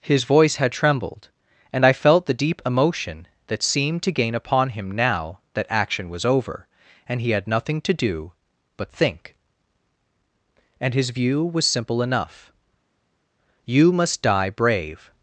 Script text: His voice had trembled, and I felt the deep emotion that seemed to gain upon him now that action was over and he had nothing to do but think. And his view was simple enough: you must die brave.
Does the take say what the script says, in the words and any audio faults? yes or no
yes